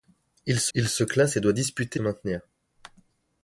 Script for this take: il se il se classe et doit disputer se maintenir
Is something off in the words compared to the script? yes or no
no